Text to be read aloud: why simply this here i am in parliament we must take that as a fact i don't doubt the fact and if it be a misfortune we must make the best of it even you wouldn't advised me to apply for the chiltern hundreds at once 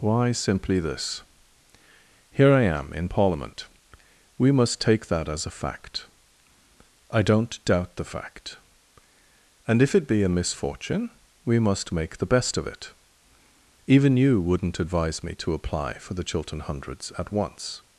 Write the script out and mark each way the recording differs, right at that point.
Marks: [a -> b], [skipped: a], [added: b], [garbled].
why simply this here i am in parliament we must take that as a fact i don't doubt the fact and if it be a misfortune we must make the best of it even you wouldn't [advised -> advise] me to apply for the chiltern hundreds at once